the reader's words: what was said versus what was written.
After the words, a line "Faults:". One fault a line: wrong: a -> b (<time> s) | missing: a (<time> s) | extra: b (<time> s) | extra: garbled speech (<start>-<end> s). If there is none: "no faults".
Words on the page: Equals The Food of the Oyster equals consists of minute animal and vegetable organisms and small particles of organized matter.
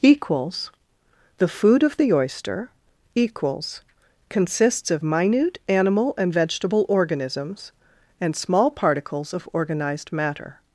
Equals The Food of the Oyster equals consists of minute animal and vegetable organisms and small particles of organized matter.
Faults:
no faults